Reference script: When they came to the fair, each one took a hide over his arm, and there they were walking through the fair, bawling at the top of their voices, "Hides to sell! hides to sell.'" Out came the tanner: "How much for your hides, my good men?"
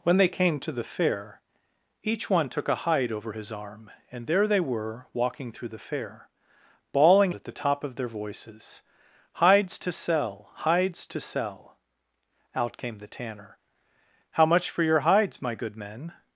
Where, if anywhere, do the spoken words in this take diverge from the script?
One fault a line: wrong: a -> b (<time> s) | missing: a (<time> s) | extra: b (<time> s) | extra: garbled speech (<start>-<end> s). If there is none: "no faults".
no faults